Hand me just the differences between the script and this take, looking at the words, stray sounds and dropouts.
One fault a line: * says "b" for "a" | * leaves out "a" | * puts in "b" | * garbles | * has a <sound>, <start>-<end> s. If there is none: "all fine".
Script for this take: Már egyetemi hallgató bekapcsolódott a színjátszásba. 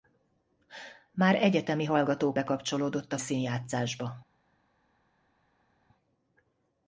all fine